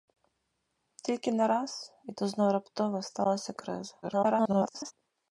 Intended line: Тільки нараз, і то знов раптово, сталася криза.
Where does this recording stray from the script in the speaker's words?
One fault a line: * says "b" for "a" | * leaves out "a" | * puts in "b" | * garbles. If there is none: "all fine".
* garbles